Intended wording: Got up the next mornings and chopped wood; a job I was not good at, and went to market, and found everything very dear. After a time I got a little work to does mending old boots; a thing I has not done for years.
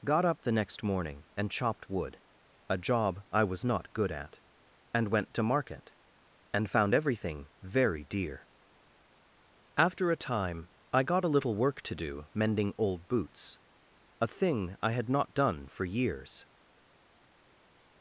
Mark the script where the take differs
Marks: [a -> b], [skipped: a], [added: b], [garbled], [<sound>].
Got up the next [mornings -> morning] and chopped wood; a job I was not good at, and went to market, and found everything very dear. After a time I got a little work to [does -> do] mending old boots; a thing I [has -> had] not done for years.